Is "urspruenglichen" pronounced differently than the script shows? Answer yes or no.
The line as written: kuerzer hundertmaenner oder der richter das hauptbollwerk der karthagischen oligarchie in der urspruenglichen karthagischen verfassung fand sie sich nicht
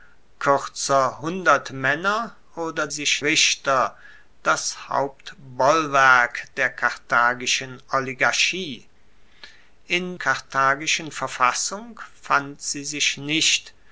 yes